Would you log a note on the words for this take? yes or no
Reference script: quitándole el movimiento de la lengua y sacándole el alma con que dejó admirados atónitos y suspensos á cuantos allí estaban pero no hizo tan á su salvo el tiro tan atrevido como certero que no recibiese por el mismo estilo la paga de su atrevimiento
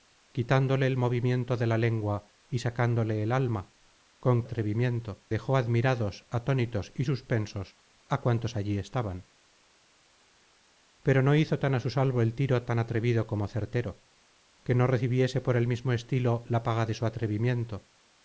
yes